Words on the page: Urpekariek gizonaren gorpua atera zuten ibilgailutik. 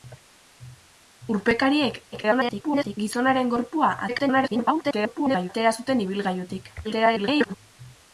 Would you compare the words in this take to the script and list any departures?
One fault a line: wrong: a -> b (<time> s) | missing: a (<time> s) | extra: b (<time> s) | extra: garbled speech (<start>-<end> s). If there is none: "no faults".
extra: garbled speech (2.1-3.0 s)
extra: garbled speech (4.1-5.5 s)
extra: garbled speech (6.8-7.5 s)